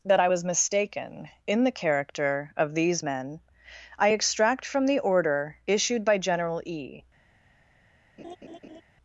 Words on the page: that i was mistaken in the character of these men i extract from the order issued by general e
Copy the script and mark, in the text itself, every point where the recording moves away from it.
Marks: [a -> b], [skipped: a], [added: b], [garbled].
that i was mistaken in the character of these men i extract from the order issued by general e